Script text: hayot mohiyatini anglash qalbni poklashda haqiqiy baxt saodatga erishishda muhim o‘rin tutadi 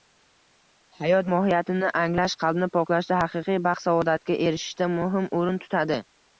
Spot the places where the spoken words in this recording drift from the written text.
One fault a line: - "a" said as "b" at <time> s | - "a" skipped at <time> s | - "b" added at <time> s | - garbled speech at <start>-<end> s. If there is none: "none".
none